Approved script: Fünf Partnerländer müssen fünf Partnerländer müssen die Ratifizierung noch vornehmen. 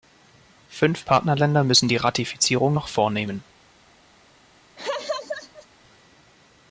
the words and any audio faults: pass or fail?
fail